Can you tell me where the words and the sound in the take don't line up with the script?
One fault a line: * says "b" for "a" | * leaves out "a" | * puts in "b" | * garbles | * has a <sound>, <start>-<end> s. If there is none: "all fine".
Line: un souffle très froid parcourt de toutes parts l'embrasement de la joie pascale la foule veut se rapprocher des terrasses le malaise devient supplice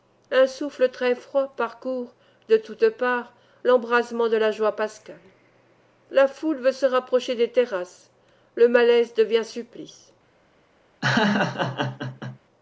* has a laugh, 11.0-12.4 s